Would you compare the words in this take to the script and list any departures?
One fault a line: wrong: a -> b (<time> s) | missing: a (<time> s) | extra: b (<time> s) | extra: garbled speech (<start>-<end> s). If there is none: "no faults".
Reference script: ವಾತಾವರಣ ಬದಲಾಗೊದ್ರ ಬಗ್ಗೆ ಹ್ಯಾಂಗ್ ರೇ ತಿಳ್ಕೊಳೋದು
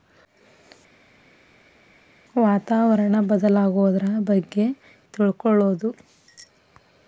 missing: ಹ್ಯಾಂಗ್ ರೇ (4.7 s)